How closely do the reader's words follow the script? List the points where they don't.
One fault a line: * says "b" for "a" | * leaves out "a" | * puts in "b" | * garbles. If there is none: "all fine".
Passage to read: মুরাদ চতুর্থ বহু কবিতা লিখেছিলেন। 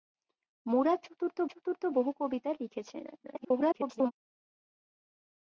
* puts in "চতুর্থ"
* garbles